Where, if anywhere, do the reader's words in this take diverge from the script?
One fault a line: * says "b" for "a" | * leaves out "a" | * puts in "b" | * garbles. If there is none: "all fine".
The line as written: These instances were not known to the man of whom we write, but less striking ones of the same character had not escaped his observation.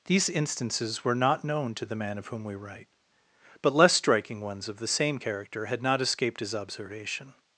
all fine